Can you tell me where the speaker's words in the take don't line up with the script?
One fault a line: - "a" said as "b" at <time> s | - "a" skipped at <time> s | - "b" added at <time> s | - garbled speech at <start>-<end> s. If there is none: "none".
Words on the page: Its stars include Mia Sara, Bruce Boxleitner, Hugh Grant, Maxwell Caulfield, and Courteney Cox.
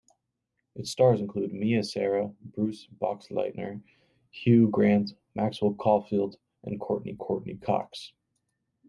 - "Courteney" added at 7.2 s